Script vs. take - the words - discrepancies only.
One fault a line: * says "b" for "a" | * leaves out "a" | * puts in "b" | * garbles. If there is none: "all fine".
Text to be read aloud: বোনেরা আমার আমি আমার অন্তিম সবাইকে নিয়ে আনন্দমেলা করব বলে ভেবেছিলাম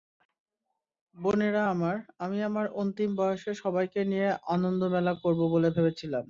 * puts in "বয়সে"